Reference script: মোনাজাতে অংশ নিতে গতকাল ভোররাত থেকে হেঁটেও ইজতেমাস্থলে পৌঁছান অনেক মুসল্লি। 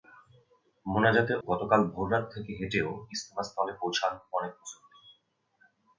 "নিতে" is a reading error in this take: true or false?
true